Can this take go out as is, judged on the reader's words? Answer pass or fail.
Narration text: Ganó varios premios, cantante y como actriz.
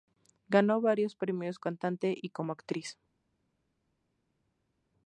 pass